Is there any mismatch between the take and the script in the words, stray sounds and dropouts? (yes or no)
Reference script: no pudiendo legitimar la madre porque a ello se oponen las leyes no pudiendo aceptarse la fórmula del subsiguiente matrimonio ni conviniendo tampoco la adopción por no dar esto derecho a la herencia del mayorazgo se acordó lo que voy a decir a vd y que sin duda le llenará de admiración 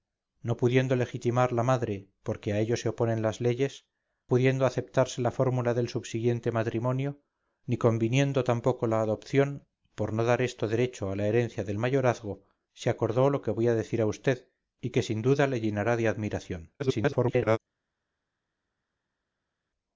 yes